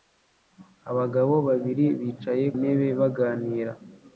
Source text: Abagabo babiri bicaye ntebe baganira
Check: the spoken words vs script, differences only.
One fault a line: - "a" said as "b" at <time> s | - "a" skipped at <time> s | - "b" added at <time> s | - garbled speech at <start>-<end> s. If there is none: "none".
none